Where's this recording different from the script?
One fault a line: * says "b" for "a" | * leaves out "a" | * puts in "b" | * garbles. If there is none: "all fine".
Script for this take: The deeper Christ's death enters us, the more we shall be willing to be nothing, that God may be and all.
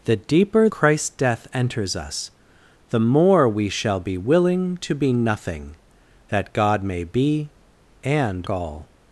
all fine